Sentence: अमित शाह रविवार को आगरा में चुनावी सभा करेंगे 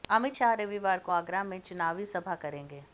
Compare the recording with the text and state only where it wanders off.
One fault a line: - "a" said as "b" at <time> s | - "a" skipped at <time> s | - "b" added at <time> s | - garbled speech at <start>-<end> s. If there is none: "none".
none